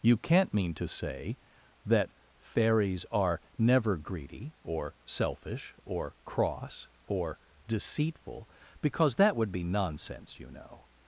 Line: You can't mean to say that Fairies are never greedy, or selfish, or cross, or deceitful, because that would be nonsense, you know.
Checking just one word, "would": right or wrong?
right